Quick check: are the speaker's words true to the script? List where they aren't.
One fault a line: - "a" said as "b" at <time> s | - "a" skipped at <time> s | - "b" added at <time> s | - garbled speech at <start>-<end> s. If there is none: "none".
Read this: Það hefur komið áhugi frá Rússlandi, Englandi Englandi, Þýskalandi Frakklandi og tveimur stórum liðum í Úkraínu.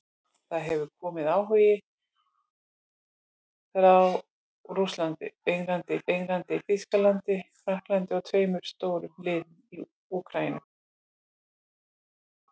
none